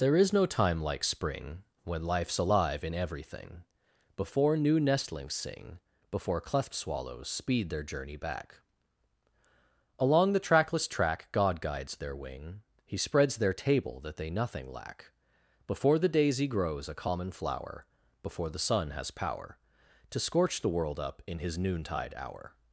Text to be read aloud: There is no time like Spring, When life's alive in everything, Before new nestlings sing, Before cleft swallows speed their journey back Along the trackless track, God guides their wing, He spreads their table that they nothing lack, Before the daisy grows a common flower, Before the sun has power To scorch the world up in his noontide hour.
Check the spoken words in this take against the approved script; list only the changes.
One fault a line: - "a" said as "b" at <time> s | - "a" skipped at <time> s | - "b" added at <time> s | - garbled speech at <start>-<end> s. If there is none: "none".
none